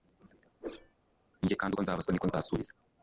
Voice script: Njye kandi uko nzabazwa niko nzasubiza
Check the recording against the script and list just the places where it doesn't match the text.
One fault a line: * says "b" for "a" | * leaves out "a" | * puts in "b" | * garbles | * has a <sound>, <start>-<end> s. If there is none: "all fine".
* has a whoosh, 0.6-1.0 s